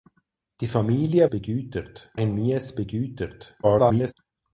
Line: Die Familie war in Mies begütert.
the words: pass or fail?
fail